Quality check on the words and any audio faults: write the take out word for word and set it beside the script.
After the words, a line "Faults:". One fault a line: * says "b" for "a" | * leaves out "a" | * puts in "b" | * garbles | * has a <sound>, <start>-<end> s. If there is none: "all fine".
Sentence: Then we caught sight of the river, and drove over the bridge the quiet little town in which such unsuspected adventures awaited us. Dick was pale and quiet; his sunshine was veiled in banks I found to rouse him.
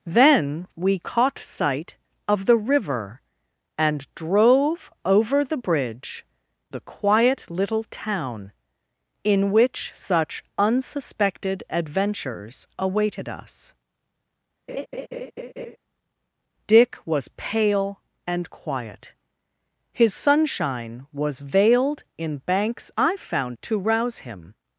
Then we caught sight of the river, and drove over the bridge the quiet little town in which such unsuspected adventures awaited us. Dick was pale and quiet; his sunshine was veiled in banks I found to rouse him.
Faults:
* has a laugh, 14.7-15.8 s